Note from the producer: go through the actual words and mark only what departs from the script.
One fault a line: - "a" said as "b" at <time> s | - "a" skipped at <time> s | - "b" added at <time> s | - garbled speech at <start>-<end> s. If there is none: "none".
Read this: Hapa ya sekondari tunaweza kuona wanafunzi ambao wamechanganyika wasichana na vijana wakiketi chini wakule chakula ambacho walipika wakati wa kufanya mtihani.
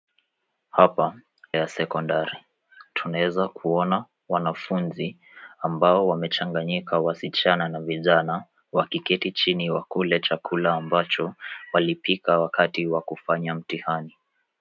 none